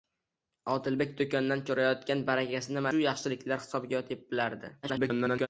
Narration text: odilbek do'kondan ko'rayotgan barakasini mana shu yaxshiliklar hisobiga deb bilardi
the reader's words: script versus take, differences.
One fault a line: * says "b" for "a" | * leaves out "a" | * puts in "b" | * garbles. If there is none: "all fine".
* leaves out "mana"
* garbles